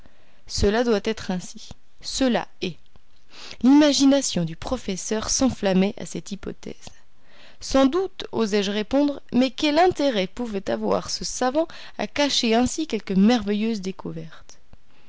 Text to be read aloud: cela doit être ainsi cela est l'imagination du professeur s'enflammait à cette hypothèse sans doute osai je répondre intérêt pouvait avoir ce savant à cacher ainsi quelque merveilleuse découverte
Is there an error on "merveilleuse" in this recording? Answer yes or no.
no